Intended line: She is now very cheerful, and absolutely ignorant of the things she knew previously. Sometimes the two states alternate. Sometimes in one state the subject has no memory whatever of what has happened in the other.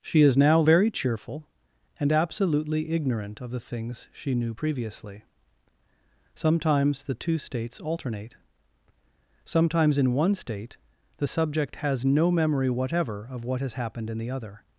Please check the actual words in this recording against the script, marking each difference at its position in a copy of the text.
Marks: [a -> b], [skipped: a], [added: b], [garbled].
She is now very cheerful, and absolutely ignorant of the things she knew previously. Sometimes the two states alternate. Sometimes in one state the subject has no memory whatever of what has happened in the other.